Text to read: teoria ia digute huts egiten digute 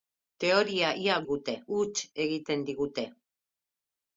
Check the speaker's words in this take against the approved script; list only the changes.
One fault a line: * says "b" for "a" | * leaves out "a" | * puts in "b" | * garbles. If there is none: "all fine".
all fine